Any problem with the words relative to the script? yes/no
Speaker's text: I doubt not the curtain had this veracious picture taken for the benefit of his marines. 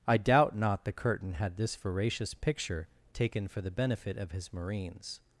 no